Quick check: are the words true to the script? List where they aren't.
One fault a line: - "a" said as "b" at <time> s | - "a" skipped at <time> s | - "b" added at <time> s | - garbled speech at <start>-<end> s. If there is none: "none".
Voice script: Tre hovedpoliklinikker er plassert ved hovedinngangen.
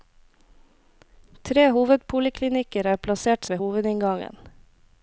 none